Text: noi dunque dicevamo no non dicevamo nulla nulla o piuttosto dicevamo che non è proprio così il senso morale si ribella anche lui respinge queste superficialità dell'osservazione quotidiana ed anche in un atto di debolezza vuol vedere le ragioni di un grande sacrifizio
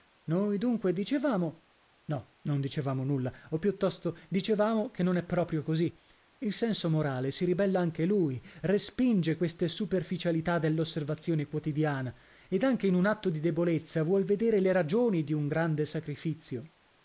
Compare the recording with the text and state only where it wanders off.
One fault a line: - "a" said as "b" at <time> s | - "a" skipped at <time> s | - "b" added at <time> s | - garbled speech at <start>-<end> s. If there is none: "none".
- "nulla" skipped at 3.3 s